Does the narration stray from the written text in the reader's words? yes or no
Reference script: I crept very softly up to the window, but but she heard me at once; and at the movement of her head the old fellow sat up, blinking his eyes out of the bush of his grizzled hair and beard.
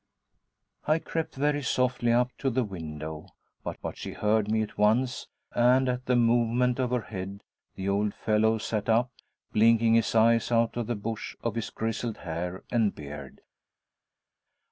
no